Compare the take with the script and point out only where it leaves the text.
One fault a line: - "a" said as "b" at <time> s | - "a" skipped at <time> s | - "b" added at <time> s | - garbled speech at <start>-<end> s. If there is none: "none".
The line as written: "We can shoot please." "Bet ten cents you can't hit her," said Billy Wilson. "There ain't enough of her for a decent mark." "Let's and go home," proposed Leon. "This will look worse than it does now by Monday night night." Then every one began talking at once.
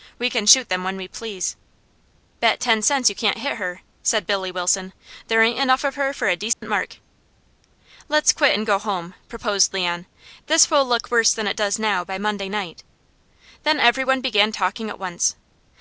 - "them when we" added at 0.7 s
- "quit" added at 8.3 s
- "night" skipped at 12.8 s